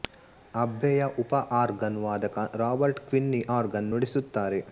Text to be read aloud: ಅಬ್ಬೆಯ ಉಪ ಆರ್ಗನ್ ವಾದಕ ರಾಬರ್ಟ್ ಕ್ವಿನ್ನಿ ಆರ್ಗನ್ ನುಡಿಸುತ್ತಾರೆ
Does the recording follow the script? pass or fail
pass